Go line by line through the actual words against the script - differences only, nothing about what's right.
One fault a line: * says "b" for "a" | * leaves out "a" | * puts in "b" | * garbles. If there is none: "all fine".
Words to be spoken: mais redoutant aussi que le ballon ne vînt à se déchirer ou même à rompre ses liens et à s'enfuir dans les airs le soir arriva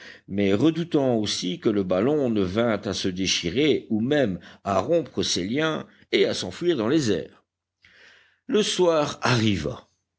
all fine